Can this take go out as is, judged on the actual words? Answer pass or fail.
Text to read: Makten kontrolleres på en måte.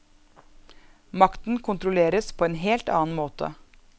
fail